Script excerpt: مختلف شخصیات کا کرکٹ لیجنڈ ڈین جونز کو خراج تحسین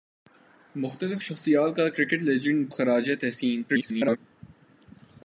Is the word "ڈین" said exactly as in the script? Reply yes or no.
no